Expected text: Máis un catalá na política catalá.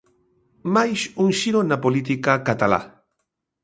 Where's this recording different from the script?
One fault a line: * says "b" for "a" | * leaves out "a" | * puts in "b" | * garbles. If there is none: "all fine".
* says "xiro" for "catalá"